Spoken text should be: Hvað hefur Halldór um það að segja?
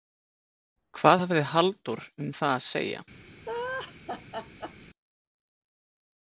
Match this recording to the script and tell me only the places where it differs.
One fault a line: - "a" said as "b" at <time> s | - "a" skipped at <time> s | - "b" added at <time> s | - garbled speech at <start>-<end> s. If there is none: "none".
- "hefur" said as "hafði" at 1.2 s